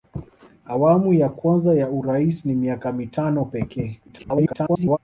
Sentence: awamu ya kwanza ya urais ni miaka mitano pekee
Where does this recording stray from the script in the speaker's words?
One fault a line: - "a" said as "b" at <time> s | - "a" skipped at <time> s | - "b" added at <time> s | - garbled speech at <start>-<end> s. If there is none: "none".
- garbled speech at 4.1-5.0 s